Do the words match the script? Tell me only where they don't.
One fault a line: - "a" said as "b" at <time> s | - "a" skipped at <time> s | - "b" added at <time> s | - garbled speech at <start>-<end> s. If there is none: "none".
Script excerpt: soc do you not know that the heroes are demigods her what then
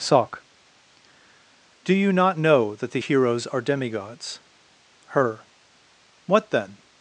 none